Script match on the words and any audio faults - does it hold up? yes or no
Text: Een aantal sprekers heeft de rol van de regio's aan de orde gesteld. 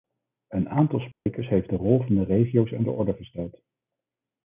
no